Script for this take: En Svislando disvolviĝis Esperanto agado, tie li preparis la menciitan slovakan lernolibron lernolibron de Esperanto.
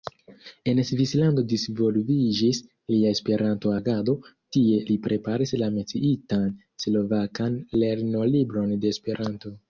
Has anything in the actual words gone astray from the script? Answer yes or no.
yes